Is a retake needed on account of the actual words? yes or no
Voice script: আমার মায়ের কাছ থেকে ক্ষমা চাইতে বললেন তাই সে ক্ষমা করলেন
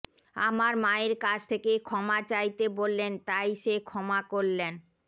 no